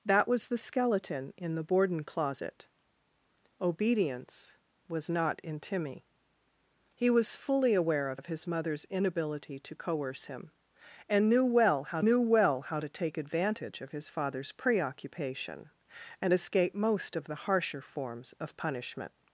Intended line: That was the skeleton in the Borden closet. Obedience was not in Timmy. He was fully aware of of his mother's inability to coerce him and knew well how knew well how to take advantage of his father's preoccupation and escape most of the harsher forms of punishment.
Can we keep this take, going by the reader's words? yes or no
yes